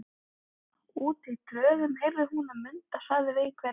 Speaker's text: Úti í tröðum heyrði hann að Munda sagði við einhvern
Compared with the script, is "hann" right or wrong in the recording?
wrong